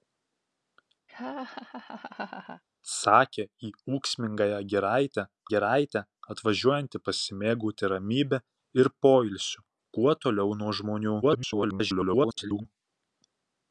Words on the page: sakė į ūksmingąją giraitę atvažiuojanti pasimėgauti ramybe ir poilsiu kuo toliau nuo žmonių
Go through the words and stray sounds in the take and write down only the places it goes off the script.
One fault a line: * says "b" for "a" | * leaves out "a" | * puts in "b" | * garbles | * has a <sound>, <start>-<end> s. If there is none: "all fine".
* has a laugh, 1.1-2.6 s
* puts in "giraitę"
* garbles